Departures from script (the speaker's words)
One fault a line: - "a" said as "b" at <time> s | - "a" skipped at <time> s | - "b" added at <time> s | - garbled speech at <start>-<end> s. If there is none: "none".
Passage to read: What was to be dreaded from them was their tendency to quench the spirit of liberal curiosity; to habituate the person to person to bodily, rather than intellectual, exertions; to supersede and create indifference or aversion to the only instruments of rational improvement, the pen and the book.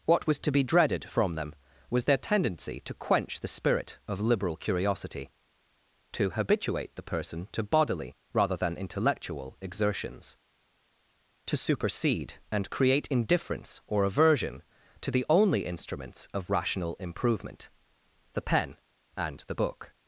- "person to" skipped at 7.6 s